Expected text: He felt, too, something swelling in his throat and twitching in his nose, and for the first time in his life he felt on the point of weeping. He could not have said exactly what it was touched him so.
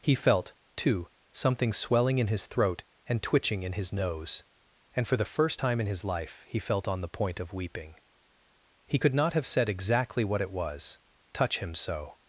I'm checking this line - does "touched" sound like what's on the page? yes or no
no